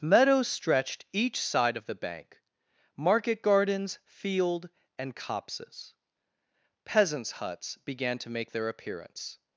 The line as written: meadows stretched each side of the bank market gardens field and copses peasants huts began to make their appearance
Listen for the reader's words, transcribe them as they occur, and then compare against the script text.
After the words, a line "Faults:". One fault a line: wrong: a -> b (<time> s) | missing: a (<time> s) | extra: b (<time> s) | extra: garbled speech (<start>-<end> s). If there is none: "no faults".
meadows stretched each side of the bank market gardens field and copses peasants huts began to make their appearance
Faults:
no faults